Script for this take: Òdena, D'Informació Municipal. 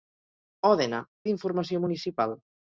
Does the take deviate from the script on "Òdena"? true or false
false